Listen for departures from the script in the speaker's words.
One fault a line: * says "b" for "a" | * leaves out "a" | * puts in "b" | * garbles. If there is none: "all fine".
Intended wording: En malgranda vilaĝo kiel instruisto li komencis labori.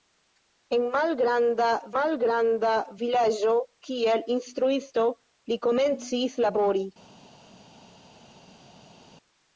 * puts in "malgranda"